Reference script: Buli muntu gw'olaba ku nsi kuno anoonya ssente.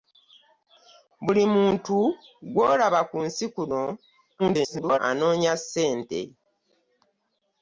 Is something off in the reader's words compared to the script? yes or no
yes